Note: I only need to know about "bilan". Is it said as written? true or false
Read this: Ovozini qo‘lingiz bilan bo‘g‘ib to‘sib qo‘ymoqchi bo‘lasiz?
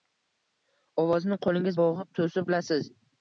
false